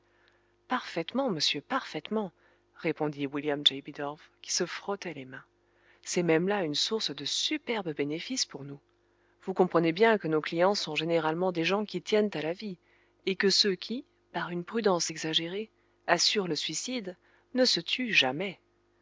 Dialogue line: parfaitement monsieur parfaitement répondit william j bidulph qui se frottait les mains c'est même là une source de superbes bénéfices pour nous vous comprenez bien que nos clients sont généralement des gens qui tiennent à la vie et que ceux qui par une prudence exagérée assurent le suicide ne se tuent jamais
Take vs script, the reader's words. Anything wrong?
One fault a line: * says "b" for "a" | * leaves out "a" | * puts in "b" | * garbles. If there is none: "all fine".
all fine